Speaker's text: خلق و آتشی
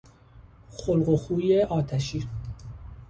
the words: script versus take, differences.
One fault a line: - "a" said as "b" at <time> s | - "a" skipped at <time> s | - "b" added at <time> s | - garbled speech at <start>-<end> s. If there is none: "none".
- "خوی" added at 1.1 s